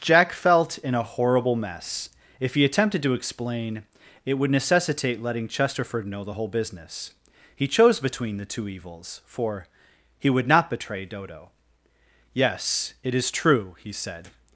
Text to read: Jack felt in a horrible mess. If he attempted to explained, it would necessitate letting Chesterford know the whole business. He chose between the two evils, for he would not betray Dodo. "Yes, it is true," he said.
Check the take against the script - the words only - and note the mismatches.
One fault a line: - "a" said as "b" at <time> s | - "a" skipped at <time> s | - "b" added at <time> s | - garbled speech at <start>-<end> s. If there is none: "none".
- "explained" said as "explain" at 3.1 s